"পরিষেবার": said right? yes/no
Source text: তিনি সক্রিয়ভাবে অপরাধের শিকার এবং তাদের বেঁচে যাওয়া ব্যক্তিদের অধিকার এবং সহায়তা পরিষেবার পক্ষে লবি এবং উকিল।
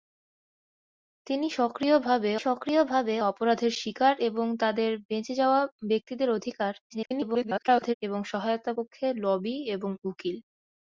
no